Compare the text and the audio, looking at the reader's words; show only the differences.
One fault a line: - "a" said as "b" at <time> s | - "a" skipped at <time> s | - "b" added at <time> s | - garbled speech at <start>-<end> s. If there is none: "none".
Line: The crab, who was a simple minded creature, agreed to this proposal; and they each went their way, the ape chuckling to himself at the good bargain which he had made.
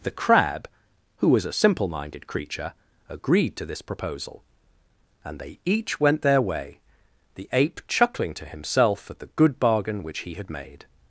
none